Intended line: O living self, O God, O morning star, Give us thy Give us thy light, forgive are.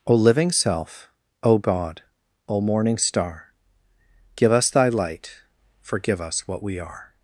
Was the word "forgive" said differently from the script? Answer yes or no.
yes